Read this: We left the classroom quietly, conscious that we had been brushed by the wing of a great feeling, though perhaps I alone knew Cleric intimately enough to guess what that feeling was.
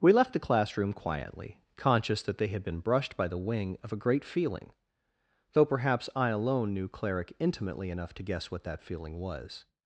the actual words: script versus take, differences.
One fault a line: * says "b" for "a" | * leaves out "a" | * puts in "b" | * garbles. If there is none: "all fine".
* says "they" for "we"